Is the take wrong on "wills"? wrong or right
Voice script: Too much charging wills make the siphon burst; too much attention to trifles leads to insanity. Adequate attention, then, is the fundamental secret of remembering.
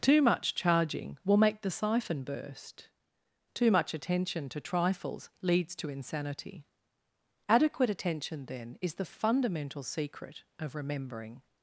wrong